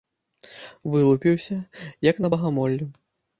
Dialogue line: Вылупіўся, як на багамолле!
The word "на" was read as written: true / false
true